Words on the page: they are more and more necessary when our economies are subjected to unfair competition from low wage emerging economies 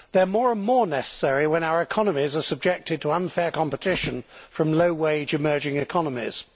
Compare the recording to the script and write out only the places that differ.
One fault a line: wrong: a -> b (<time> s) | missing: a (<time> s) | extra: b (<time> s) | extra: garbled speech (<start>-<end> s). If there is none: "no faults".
no faults